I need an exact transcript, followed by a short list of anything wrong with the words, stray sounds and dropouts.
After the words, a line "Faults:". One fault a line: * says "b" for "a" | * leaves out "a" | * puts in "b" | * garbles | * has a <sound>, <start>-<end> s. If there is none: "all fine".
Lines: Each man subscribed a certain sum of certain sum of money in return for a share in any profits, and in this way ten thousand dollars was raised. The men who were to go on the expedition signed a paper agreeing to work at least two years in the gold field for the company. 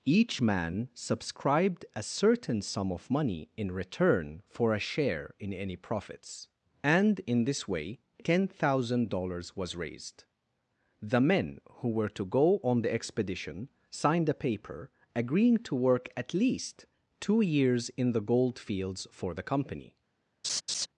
Each man subscribed a certain sum of money in return for a share in any profits, and in this way ten thousand dollars was raised. The men who were to go on the expedition signed a paper agreeing to work at least two years in the gold fields for the company.
Faults:
* leaves out "certain sum of"
* says "fields" for "field"
* has a laugh, 20.4-20.9 s